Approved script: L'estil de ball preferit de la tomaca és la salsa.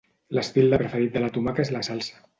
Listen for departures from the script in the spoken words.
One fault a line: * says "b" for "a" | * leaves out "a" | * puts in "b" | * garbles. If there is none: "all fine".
* leaves out "ball"